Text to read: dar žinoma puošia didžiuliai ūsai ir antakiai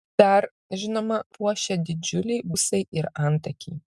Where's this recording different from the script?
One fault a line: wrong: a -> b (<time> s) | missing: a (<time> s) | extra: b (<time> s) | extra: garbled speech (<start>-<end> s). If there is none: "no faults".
no faults